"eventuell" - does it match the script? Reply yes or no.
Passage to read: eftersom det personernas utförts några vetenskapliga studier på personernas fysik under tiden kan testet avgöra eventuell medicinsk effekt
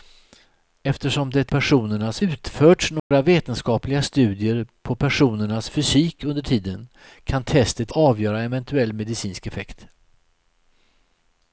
yes